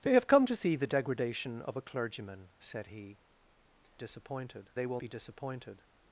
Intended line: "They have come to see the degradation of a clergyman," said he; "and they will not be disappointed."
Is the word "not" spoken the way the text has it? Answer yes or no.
no